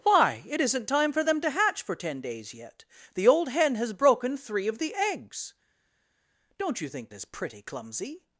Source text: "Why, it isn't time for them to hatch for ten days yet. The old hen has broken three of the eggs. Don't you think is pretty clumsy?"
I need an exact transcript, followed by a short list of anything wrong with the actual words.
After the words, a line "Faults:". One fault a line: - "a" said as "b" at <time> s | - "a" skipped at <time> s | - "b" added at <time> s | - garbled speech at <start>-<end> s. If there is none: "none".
"Why, it isn't time for them to hatch for ten days yet. The old hen has broken three of the eggs. Don't you think is pretty clumsy?"
Faults:
none